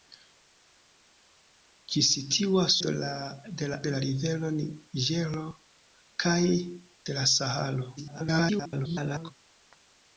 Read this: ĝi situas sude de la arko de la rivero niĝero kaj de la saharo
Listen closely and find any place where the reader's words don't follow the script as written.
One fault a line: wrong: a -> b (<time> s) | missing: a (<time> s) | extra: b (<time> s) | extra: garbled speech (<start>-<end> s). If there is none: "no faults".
missing: sude (2.7 s)
missing: arko (3.8 s)
extra: garbled speech (8.0-9.3 s)